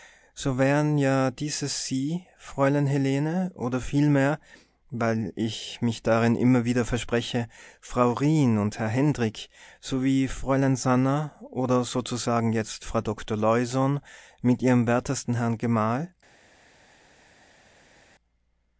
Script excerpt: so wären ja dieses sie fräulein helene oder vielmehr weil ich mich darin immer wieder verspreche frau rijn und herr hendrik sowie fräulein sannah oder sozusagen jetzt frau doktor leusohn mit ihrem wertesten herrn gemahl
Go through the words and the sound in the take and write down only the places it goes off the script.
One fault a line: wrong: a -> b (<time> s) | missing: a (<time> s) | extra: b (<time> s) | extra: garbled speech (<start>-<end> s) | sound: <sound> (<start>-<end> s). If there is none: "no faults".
no faults